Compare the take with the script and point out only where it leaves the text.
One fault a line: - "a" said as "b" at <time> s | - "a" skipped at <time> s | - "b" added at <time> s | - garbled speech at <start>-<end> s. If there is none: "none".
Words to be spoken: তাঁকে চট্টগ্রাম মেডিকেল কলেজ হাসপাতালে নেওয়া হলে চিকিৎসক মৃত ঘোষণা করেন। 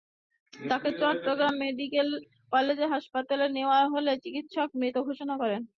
none